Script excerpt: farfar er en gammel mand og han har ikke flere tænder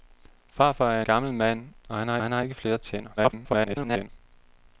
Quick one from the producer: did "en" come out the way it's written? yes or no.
no